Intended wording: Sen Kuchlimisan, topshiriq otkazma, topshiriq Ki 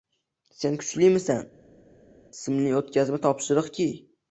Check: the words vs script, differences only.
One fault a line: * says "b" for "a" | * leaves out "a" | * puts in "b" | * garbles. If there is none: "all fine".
* says "simli" for "topshiriq"